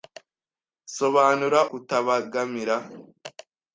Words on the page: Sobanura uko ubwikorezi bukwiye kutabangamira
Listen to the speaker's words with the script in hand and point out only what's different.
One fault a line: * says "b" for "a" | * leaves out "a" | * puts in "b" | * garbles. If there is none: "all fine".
* leaves out "uko ubwikorezi bukwiye"